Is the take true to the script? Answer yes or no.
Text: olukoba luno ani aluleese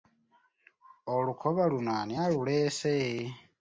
yes